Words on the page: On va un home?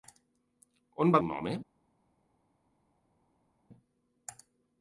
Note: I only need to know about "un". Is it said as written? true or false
true